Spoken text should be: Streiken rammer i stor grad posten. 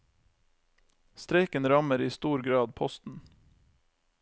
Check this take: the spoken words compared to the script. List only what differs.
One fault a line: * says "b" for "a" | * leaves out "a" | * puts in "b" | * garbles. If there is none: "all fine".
all fine